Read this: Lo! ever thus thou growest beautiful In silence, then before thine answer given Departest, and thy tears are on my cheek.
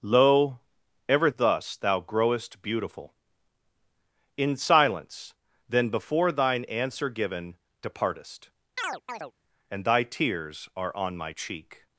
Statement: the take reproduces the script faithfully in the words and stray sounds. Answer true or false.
false